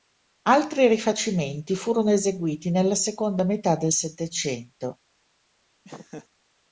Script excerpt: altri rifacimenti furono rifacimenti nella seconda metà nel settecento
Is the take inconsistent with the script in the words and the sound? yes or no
yes